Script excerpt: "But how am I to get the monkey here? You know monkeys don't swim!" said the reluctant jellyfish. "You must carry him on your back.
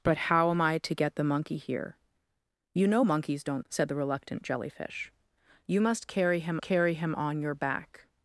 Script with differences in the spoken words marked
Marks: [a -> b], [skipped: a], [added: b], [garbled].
"But how am I to get the monkey here? You know monkeys don't [skipped: swim!"] said the reluctant jellyfish. "You must carry him [added: carry him] on your back.